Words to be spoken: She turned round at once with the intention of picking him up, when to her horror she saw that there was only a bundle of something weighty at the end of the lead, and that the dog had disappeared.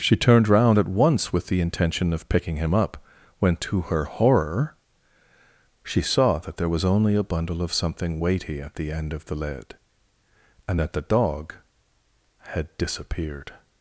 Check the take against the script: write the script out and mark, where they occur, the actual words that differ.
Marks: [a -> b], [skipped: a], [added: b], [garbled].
She turned round at once with the intention of picking him up, when to her horror she saw that there was only a bundle of something weighty at the end of the lead, and that the dog had disappeared.